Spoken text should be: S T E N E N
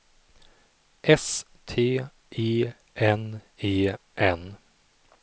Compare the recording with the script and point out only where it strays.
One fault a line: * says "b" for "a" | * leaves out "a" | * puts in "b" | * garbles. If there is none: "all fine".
all fine